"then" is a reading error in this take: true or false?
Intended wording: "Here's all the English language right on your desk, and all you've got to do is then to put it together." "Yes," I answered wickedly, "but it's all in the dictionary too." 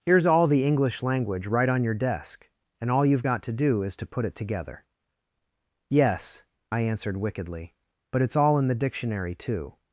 true